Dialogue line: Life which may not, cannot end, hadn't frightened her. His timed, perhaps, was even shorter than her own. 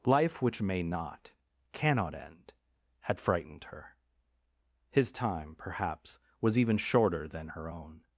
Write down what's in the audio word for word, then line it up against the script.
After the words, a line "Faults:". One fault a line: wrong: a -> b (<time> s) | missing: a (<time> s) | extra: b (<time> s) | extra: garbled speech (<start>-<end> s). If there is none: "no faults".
Life which may not, cannot end, had frightened her. His time, perhaps, was even shorter than her own.
Faults:
wrong: hadn't -> had (3.0 s)
wrong: timed -> time (5.1 s)